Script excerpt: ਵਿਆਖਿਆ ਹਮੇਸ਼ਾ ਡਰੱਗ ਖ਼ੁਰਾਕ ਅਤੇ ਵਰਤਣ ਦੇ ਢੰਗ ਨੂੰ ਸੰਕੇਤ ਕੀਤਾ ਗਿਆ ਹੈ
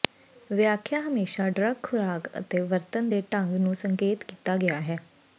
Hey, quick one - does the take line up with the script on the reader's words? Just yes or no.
yes